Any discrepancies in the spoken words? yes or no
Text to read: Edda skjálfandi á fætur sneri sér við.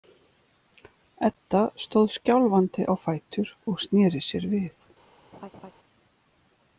yes